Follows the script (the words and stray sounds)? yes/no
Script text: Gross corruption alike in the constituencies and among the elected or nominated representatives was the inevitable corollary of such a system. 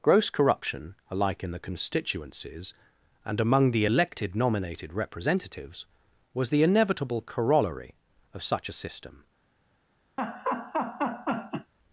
no